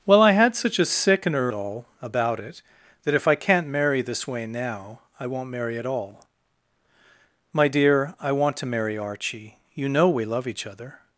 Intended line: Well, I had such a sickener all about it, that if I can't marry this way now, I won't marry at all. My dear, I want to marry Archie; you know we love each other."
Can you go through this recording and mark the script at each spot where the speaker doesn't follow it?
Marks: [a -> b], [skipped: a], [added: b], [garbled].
Well, I had such a sickener all about it, that if I can't marry this way now, I won't marry at all. My dear, I want to marry Archie; you know we love each other."